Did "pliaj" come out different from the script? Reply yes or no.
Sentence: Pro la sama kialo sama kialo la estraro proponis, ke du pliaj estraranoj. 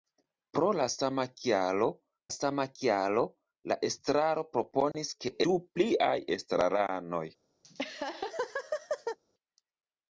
no